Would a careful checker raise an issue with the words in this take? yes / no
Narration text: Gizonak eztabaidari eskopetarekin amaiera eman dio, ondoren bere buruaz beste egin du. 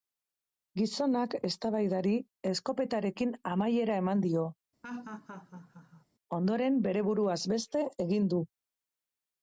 no